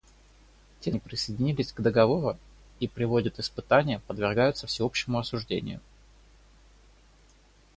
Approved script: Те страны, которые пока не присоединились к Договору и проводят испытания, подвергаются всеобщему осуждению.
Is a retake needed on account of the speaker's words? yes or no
yes